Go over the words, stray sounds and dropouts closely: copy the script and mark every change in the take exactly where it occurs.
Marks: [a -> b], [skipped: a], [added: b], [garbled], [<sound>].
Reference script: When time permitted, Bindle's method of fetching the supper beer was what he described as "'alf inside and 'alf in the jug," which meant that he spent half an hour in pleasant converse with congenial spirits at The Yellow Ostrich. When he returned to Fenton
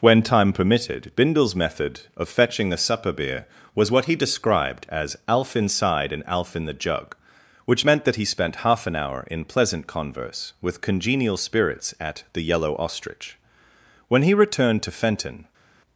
When time permitted, Bindle's method of fetching the supper beer was what he described as "'alf inside and 'alf in the jug," which meant that he spent half an hour in pleasant converse with congenial spirits at The Yellow Ostrich. When he returned to Fenton